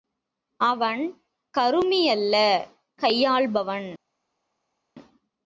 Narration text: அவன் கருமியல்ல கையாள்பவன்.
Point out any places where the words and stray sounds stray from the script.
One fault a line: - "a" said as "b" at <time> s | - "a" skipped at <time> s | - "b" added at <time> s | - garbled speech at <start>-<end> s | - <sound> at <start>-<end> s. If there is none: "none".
none